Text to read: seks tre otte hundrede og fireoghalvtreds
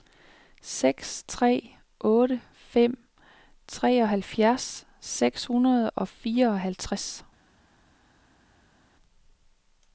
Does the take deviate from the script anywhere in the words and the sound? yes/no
yes